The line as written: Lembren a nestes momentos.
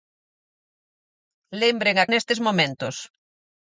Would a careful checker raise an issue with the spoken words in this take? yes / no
no